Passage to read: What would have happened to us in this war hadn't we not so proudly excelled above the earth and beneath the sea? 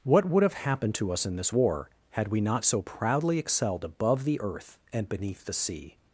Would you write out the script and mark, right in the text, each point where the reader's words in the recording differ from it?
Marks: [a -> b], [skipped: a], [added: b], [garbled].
What would have happened to us in this war [hadn't -> had] we not so proudly excelled above the earth and beneath the sea?